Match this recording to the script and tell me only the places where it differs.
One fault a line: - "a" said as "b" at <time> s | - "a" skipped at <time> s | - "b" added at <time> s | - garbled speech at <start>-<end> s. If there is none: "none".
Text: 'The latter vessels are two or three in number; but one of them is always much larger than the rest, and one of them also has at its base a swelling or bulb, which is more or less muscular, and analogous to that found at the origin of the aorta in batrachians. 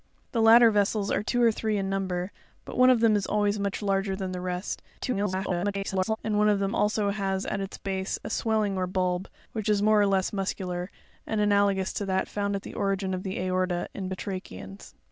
- garbled speech at 5.0-6.2 s